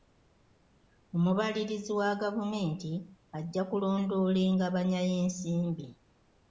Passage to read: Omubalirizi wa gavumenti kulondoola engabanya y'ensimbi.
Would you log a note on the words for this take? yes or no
yes